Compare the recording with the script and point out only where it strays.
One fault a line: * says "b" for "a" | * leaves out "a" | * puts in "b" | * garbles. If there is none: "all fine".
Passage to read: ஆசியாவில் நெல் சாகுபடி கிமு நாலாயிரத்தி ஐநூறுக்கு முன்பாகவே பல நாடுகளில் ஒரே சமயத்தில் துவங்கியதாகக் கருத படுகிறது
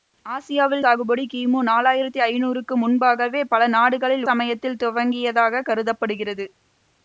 * leaves out "நெல்"
* leaves out "ஒரே"